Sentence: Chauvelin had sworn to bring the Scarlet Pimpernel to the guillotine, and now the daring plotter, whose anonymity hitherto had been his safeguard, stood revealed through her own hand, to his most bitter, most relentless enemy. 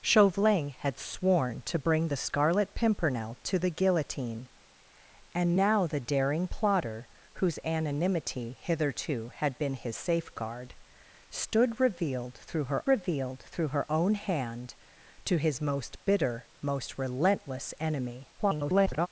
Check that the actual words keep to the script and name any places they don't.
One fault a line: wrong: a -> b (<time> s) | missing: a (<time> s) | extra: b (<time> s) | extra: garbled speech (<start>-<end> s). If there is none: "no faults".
extra: revealed through her (12.9 s)
extra: garbled speech (18.4-19.1 s)